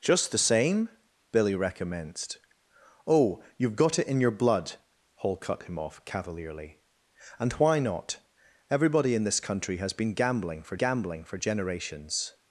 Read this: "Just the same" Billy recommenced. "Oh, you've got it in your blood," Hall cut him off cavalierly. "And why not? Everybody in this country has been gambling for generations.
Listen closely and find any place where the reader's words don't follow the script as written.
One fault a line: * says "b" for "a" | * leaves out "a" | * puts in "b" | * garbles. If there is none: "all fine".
* puts in "gambling for"